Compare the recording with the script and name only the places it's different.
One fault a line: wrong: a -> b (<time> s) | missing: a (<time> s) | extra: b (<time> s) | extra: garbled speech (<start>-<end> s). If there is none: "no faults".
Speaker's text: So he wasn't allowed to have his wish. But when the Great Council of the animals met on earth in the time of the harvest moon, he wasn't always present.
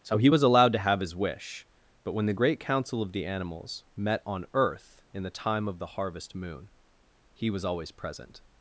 wrong: wasn't -> was (0.3 s)
wrong: wasn't -> was (7.5 s)